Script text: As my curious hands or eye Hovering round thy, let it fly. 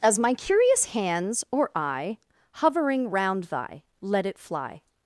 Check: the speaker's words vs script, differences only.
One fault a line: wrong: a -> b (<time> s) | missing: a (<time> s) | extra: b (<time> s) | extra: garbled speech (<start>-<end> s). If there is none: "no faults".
no faults